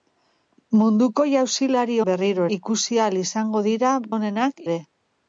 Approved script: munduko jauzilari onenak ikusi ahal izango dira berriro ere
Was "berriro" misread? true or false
true